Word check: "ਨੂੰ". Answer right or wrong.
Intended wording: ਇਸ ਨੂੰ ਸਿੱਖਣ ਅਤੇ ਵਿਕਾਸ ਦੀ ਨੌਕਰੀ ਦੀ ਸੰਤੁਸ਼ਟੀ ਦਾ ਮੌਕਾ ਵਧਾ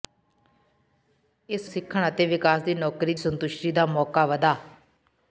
wrong